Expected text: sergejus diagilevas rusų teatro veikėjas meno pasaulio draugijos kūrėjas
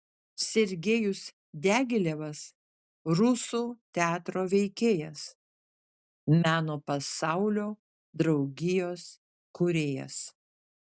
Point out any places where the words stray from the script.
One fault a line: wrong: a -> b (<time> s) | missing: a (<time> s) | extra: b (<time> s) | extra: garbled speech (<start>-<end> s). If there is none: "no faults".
no faults